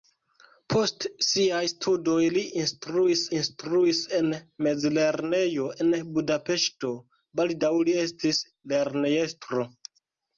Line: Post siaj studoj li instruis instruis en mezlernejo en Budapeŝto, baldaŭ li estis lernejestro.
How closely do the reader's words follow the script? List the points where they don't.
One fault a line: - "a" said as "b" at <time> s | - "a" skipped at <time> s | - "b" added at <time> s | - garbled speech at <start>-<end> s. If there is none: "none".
none